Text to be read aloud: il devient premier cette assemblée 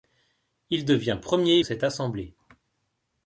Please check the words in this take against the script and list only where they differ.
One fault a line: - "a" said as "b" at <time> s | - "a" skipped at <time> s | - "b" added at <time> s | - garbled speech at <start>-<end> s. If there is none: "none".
none